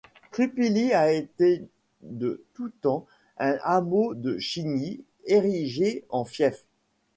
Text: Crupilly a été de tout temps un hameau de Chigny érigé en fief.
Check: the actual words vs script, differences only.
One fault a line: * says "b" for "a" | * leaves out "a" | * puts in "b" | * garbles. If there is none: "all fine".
all fine